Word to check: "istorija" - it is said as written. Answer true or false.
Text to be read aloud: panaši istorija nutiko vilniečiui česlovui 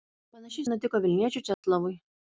false